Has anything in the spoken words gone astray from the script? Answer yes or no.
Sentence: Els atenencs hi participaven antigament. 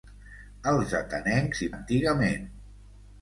yes